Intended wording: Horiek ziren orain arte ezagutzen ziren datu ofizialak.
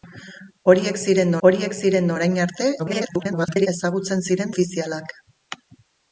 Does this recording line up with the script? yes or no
no